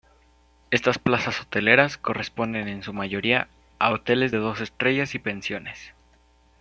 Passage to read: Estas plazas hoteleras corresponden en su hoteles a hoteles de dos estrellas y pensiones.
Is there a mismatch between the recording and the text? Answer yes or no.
yes